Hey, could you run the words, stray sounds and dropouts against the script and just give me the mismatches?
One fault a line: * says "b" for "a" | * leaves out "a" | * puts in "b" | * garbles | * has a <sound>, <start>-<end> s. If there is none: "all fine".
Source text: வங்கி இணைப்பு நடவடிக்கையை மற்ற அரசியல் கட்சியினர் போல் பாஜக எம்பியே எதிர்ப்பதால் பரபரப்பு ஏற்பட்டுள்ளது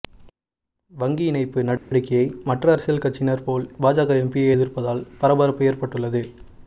* has a dropout, 1.8-1.9 s